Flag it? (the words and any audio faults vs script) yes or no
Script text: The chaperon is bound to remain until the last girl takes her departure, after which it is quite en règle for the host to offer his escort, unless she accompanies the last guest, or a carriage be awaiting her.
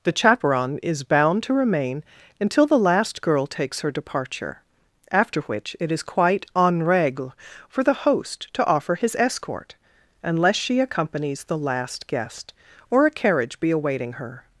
no